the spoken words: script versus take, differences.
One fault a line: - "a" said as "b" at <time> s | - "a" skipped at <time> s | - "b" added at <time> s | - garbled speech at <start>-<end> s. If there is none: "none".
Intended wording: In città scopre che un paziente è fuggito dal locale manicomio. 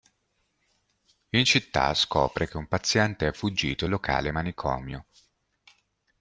- "dal" skipped at 3.9 s